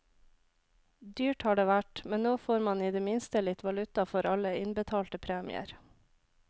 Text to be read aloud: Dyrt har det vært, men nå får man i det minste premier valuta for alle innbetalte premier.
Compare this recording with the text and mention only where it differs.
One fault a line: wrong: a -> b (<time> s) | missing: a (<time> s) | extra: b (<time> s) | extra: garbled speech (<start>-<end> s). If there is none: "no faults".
wrong: premier -> litt (3.5 s)